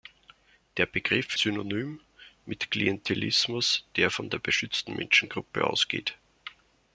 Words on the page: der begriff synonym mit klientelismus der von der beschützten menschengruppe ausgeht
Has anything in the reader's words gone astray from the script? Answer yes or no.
no